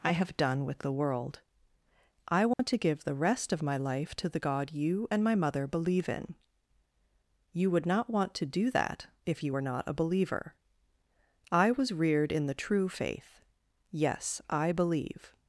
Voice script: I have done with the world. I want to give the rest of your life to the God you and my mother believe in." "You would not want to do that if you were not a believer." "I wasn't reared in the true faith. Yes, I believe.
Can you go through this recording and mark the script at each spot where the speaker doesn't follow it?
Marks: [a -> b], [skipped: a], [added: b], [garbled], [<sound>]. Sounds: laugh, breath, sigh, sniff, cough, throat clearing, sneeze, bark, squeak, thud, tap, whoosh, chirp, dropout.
I have done with the world. I want [dropout] to give the rest of [your -> my] life to the God you and my mother believe in." "You would not want to do that if you were not a believer." "I [wasn't -> was] reared in the true faith. Yes, I believe.